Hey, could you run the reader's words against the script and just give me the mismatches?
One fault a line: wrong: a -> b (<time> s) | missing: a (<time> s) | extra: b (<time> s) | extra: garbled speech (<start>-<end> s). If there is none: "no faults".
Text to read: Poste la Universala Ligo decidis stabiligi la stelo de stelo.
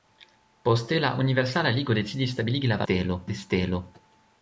no faults